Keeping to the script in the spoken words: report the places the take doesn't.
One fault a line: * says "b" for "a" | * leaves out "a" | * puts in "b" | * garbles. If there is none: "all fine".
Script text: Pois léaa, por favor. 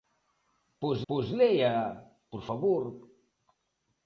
* puts in "pois"